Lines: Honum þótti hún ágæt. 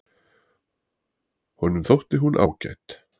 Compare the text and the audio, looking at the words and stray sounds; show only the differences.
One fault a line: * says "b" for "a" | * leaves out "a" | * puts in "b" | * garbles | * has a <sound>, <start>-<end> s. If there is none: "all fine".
all fine